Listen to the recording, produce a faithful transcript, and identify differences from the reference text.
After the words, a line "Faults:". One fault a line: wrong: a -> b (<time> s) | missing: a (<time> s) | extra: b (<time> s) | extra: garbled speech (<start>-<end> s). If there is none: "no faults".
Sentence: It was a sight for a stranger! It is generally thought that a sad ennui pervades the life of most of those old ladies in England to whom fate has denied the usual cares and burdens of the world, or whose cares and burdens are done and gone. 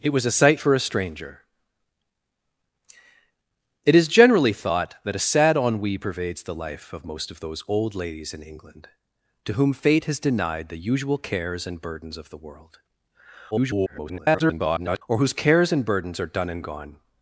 It was a sight for a stranger! It is generally thought that a sad ennui pervades the life of most of those old ladies in England to whom fate has denied the usual cares and burdens of the world, [garbled] or whose cares and burdens are done and gone.
Faults:
extra: garbled speech (13.5-15.0 s)